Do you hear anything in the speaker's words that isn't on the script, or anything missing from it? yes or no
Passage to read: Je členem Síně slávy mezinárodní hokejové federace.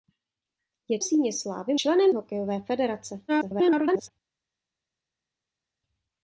yes